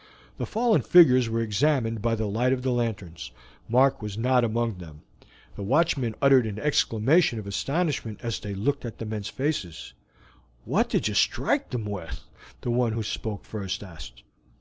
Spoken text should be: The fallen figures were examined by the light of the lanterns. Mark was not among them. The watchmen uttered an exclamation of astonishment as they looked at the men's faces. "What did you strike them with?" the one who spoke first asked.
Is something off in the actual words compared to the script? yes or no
no